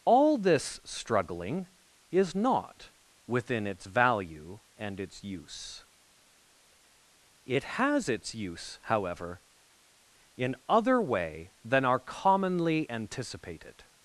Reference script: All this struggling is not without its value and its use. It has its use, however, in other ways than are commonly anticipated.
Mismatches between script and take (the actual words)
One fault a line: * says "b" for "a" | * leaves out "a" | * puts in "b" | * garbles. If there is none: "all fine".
* says "within" for "without"
* says "way" for "ways"